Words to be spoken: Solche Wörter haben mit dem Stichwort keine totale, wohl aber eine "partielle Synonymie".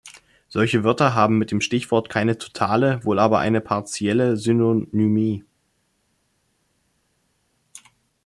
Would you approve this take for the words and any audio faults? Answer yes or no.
yes